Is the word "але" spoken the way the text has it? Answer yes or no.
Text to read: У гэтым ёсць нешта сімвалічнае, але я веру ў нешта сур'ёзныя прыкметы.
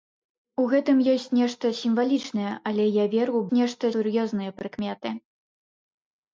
yes